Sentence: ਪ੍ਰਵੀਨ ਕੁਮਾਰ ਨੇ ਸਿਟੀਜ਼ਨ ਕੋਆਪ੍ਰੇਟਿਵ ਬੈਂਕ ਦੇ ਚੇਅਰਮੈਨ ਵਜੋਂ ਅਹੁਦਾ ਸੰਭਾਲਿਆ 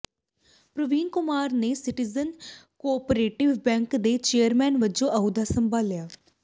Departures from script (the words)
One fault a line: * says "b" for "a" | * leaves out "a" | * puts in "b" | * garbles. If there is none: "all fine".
all fine